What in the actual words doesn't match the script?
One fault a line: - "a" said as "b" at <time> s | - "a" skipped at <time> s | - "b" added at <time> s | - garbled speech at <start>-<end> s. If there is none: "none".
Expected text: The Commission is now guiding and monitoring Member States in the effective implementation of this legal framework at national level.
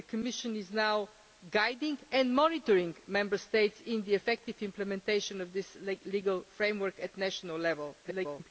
- garbled speech at 8.0-8.5 s